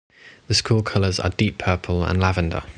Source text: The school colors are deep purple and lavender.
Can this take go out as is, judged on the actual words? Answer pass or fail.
pass